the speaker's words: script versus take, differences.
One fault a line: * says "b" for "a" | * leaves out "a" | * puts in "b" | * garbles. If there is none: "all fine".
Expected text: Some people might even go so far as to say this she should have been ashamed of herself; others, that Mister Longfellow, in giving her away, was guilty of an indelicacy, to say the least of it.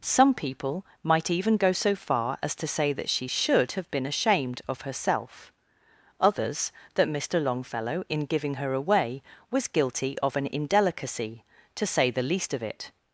* says "that" for "this"